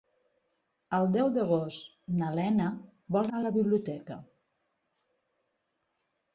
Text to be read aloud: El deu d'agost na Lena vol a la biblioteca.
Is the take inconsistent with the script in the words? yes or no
no